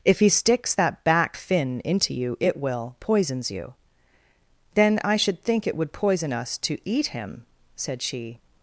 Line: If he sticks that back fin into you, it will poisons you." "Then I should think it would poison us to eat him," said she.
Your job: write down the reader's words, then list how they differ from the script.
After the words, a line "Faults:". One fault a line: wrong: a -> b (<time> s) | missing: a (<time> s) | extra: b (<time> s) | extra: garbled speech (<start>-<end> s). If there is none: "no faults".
If he sticks that back fin into you, it will poisons you." "Then I should think it would poison us to eat him," said she.
Faults:
no faults